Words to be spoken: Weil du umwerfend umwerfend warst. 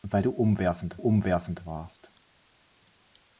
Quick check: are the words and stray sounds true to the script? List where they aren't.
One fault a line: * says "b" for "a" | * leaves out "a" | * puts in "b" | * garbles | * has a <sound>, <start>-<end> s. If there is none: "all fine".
all fine